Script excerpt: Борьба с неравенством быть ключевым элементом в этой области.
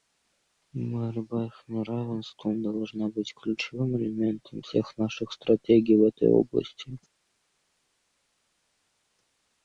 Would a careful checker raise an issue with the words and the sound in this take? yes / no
yes